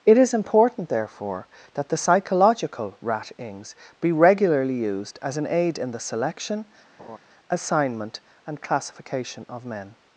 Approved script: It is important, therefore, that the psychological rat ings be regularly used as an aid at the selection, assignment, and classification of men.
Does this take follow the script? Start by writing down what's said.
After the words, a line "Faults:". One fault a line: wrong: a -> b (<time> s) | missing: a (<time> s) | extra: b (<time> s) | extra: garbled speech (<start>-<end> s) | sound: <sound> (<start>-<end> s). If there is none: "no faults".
It is important, therefore, that the psychological rat ings be regularly used as an aid in the selection, assignment, and classification of men.
Faults:
wrong: at -> in (5.8 s)
sound: laugh (7.0-7.2 s)